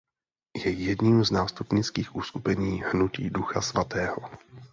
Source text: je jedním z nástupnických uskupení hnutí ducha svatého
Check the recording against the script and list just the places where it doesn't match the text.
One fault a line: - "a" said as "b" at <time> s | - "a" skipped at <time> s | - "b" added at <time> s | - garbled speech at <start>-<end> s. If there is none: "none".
none